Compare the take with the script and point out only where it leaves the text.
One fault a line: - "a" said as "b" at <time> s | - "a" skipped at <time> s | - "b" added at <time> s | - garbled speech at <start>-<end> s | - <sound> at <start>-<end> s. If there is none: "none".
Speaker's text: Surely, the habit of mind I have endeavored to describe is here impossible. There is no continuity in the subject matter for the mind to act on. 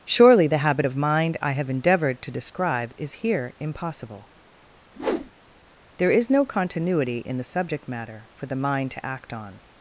- whoosh at 4.9-5.3 s